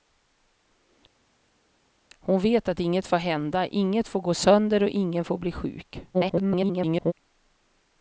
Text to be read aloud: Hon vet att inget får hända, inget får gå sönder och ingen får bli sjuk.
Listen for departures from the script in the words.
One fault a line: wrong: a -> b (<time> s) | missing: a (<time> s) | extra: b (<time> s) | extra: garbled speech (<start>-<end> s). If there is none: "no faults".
extra: garbled speech (6.1-7.1 s)